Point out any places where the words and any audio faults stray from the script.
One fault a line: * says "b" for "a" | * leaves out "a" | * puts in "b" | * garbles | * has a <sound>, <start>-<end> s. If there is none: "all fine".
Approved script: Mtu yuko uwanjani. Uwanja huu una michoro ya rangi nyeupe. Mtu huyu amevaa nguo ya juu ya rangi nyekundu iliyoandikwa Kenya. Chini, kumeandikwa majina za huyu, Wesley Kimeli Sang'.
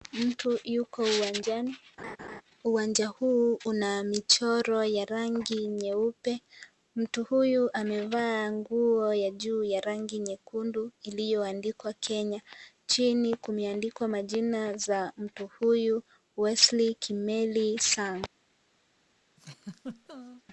* has a laugh, 2.0-2.4 s
* puts in "mtu"
* has a laugh, 19.4-20.4 s